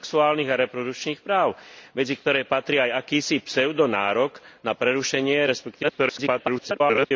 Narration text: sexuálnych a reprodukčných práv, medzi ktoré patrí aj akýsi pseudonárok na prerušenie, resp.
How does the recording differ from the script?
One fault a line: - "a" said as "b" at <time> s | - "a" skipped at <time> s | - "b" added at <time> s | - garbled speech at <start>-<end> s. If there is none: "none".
- garbled speech at 5.8-7.1 s